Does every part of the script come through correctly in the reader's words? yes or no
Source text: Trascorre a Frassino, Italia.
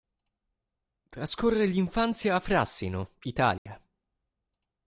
no